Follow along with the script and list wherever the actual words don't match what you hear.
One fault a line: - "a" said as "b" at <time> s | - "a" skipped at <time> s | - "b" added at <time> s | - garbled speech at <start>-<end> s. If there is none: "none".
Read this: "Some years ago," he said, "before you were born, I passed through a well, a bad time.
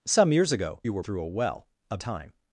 - "he said before" skipped at 0.8 s
- "born I passed" skipped at 1.0 s
- "bad" skipped at 2.0 s